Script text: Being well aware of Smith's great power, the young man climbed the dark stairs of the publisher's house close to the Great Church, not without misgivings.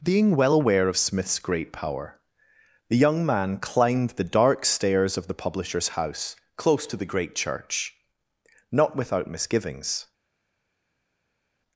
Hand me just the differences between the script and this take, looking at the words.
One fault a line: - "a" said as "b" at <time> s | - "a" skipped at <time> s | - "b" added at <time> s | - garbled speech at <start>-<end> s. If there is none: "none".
none